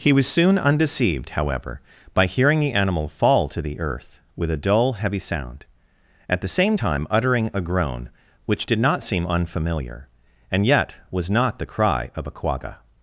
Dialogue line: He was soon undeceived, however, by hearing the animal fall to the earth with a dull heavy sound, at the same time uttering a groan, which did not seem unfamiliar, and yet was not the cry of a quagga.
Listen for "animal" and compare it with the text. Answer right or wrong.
right